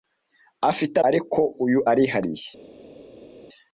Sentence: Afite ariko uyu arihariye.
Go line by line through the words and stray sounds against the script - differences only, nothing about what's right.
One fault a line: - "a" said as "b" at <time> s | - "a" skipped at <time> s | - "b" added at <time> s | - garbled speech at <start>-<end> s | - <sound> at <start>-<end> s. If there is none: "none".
none